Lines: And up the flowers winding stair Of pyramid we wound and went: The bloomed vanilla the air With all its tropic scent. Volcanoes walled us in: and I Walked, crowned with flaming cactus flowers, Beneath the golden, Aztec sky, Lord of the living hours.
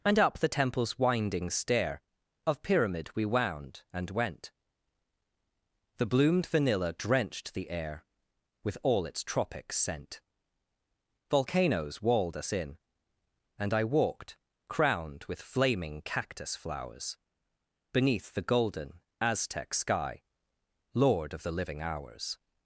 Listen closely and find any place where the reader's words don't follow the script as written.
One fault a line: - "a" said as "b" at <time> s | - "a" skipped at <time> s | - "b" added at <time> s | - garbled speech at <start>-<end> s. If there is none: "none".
- "flowers" said as "temple's" at 0.5 s
- "drenched" added at 6.9 s